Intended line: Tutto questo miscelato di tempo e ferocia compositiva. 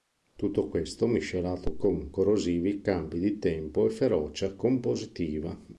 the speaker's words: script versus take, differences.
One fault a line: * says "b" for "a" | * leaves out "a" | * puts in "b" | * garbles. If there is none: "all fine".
* puts in "con corrosivi cambi"